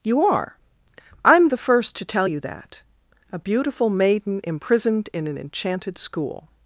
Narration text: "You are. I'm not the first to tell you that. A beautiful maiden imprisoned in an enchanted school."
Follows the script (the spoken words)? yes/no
no